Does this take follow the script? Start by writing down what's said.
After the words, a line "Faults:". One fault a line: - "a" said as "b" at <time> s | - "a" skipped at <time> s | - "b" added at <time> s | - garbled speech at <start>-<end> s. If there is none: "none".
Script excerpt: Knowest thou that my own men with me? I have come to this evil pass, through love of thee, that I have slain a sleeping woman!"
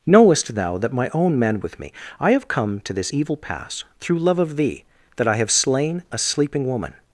Knowest thou that my own men with me? I have come to this evil pass, through love of thee, that I have slain a sleeping woman!"
Faults:
none